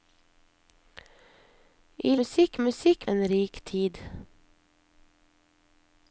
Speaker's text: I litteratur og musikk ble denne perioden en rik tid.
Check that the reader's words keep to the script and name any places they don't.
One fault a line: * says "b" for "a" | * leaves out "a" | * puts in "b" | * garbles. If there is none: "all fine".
* says "musikk" for "litteratur"
* leaves out "ble denne perioden"